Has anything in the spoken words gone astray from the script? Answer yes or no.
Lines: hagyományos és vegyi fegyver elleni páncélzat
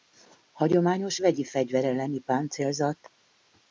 yes